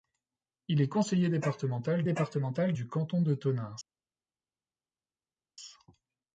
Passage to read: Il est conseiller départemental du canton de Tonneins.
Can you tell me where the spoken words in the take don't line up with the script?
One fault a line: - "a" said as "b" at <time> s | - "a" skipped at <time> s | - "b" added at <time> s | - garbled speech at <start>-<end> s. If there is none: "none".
- "départemental" added at 2.0 s